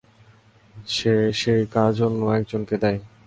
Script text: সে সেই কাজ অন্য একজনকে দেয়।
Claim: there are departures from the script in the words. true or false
false